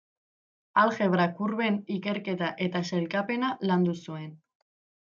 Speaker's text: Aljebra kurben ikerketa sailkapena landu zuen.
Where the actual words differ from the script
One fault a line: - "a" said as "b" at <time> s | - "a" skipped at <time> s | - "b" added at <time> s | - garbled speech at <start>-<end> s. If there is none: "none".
- "eta" added at 2.7 s